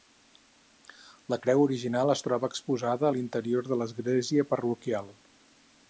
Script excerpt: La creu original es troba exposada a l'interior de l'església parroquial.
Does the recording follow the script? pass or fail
pass